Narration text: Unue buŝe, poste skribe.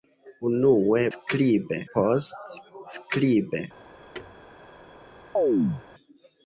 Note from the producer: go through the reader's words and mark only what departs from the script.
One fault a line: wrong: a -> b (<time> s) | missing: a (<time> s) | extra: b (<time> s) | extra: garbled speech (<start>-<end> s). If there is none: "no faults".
wrong: buŝe -> skribe (1.1 s)